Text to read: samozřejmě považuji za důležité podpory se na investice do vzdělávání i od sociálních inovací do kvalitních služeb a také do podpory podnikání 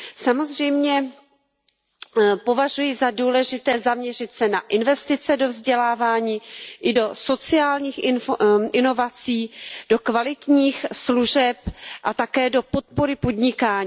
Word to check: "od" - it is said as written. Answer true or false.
false